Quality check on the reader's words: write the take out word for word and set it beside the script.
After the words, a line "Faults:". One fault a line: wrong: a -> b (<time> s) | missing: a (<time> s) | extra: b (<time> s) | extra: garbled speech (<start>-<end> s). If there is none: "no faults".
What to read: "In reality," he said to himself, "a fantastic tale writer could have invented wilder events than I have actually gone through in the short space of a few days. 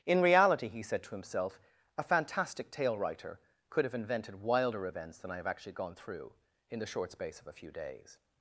"In reality," he said to himself, "a fantastic tale writer could have invented wilder events than I have actually gone through in the short space of a few days.
Faults:
no faults